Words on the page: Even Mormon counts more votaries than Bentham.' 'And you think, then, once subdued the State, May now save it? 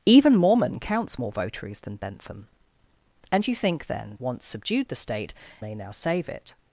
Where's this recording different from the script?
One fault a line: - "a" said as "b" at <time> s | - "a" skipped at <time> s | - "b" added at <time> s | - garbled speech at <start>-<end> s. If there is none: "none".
none